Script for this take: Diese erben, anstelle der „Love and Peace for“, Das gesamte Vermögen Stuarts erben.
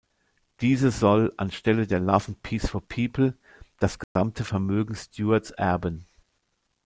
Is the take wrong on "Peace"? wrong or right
right